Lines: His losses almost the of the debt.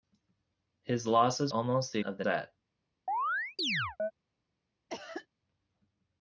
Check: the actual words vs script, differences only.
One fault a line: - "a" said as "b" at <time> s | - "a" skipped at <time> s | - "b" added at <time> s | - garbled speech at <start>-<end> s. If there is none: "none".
none